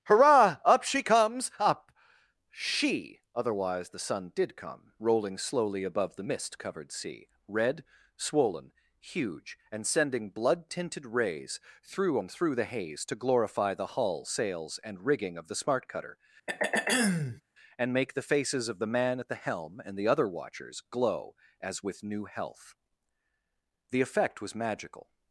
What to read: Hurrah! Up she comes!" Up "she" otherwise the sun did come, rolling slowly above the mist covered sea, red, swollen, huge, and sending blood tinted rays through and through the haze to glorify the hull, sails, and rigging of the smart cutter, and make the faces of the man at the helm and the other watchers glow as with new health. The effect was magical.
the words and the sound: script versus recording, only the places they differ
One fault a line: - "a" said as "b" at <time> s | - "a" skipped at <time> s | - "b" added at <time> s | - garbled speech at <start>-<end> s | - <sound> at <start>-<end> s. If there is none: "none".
- throat clearing at 16.5-17.4 s